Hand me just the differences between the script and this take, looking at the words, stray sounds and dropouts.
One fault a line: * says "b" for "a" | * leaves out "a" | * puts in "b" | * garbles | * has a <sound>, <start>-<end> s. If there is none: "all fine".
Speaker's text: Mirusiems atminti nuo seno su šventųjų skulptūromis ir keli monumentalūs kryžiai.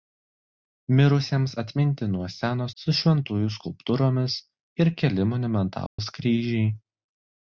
* has a dropout, 5.9-6.0 s